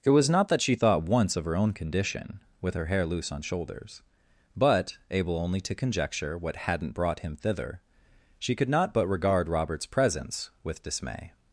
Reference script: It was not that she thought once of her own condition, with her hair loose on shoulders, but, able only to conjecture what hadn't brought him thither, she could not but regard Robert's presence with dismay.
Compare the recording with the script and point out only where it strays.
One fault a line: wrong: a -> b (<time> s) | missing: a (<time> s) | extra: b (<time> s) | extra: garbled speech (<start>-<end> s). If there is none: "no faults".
no faults